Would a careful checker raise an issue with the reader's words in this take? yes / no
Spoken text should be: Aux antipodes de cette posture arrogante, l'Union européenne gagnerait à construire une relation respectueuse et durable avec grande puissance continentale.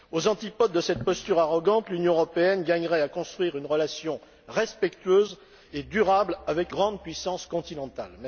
no